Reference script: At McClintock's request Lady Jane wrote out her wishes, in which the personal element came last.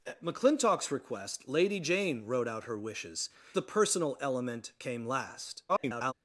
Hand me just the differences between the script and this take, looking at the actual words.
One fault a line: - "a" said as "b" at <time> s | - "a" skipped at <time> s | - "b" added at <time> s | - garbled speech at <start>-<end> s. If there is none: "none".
- "in which" skipped at 3.3 s
- garbled speech at 5.7-6.1 s